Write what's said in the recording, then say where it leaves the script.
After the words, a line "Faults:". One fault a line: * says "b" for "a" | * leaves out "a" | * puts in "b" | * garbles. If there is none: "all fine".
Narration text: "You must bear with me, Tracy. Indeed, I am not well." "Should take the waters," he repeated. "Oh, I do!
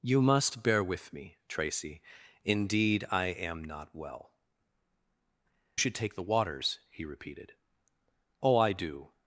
"You must bear with me, Tracy. Indeed, I am not well." "Should take the waters," he repeated. "Oh, I do!
Faults:
all fine